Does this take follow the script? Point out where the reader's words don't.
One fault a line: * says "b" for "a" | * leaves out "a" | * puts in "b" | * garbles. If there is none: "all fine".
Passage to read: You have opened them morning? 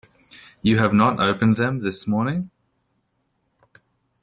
* puts in "not"
* puts in "this"